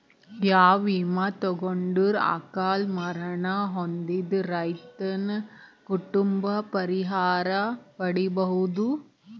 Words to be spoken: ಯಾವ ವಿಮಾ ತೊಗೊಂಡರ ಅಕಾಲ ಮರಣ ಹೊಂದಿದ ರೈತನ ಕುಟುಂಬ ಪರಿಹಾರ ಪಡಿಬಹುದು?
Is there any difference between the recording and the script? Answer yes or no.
no